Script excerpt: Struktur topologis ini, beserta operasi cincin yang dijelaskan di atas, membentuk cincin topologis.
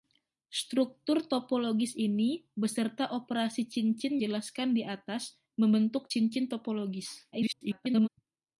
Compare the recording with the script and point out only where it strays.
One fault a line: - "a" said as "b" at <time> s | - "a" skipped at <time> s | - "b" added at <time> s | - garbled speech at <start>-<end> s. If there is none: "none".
- "yang" skipped at 4.2 s
- garbled speech at 7.3-8.1 s